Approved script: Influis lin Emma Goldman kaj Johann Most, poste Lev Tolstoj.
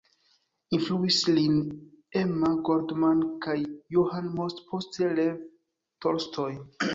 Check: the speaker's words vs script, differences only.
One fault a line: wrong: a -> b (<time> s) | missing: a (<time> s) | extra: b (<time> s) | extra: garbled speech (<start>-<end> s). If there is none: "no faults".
no faults